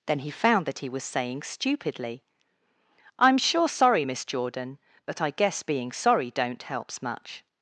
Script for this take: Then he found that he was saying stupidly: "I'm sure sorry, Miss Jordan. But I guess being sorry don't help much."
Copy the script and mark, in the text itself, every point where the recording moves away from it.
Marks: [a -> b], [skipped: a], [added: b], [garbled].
Then he found that he was saying stupidly: "I'm sure sorry, Miss Jordan. But I guess being sorry don't [help -> helps] much."